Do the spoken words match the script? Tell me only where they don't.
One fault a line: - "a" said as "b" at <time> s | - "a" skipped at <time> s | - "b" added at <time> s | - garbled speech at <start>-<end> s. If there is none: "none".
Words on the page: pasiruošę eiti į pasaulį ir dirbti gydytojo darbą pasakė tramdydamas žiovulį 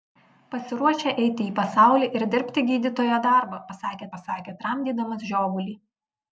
- "pasakė" added at 4.1 s